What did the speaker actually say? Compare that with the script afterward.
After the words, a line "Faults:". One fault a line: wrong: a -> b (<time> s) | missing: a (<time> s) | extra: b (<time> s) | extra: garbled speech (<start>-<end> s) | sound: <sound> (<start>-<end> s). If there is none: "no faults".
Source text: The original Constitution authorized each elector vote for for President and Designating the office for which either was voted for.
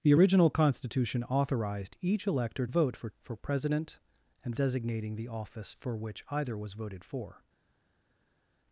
The original Constitution authorized each elector vote for for President and Designating the office for which either was voted for.
Faults:
no faults